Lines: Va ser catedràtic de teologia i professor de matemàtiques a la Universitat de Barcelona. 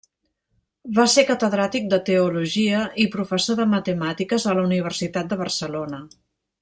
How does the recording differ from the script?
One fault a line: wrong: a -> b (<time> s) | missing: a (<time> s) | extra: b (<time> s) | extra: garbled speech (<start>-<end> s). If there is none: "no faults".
no faults